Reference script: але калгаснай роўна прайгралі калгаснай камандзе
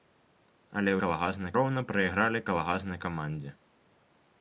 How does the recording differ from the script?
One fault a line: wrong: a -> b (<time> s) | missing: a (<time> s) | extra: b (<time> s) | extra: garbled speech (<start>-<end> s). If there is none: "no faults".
no faults